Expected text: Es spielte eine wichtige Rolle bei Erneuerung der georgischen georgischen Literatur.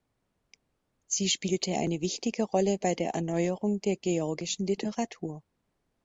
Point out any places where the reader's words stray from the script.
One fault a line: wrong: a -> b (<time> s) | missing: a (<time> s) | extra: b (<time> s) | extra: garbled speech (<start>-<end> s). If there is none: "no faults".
wrong: Es -> Sie (1.1 s)
extra: der (3.0 s)
missing: georgischen (4.7 s)